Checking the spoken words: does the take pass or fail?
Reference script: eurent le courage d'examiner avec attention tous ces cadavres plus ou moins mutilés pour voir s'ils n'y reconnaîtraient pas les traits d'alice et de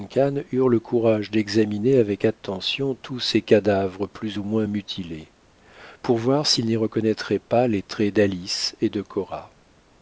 pass